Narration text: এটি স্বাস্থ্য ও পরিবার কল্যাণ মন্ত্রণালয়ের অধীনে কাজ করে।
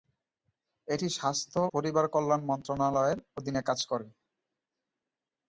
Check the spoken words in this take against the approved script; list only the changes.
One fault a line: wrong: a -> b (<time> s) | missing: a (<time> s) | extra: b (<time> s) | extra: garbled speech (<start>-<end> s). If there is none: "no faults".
missing: ও (1.6 s)